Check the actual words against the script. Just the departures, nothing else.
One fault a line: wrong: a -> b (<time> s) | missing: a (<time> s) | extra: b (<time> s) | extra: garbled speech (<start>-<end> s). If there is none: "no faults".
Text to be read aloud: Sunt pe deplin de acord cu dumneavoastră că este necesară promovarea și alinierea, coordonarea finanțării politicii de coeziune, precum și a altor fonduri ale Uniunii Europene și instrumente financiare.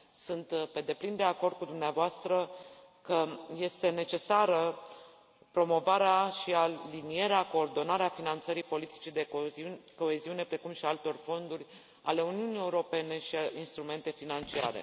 no faults